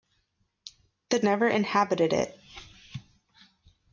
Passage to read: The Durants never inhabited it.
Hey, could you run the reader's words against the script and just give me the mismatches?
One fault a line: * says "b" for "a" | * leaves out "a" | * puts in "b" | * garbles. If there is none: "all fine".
* leaves out "Durants"